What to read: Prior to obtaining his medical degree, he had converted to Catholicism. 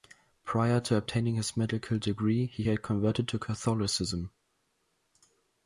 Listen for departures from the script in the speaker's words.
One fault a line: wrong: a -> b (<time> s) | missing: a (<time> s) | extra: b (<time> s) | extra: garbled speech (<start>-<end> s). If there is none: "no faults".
no faults